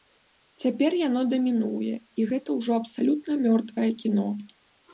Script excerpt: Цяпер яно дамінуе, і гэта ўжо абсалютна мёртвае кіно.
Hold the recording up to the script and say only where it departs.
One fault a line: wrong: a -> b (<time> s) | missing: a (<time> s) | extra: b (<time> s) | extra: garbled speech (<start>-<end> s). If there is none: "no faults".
no faults